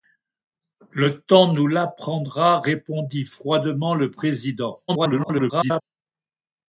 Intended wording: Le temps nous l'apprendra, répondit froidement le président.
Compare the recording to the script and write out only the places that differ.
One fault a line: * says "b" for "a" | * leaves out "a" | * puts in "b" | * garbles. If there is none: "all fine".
* garbles